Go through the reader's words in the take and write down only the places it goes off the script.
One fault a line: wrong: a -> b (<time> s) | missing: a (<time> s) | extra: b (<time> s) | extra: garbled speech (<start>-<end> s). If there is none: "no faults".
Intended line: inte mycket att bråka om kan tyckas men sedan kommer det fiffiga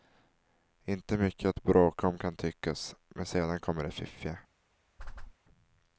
no faults